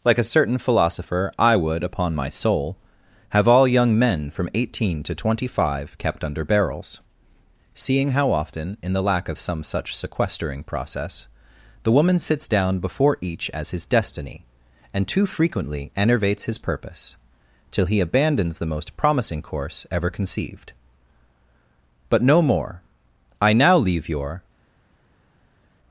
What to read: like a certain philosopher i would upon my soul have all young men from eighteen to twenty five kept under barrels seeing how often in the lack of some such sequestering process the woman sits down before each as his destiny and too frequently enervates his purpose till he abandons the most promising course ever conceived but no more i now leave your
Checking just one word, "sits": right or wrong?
right